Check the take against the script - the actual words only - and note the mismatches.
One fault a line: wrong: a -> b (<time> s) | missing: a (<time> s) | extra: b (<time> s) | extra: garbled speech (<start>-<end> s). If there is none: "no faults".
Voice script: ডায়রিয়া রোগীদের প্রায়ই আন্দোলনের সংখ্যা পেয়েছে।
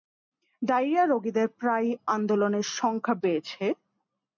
no faults